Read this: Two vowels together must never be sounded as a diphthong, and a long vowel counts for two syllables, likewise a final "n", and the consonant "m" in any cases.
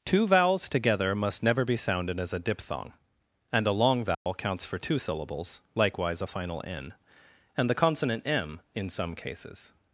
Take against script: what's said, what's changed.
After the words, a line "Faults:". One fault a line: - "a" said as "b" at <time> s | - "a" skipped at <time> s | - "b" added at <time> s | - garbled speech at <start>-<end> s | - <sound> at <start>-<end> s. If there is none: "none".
Two vowels together must never be sounded as a diphthong, and a long vowel counts for two syllables, likewise a final "n", and the consonant "m" in some cases.
Faults:
- dropout at 4.1-4.3 s
- "any" said as "some" at 8.9 s